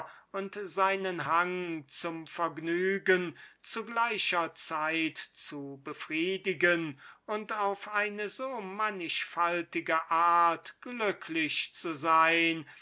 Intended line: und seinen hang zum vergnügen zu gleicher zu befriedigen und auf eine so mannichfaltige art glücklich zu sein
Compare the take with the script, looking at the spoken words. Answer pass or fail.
fail